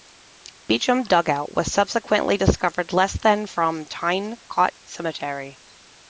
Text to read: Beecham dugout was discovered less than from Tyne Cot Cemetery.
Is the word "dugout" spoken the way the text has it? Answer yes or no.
yes